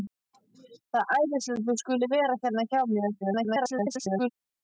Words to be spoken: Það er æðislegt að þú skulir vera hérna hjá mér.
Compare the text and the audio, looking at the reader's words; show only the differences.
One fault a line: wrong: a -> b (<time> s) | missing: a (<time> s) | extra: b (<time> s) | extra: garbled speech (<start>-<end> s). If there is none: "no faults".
extra: garbled speech (3.2-4.3 s)